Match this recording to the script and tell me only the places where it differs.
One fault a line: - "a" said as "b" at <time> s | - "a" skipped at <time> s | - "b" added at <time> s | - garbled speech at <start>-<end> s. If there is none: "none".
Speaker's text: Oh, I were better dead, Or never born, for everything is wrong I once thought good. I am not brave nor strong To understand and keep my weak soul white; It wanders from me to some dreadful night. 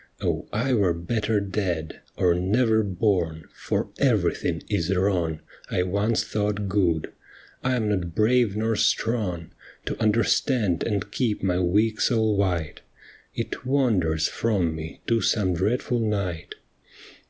none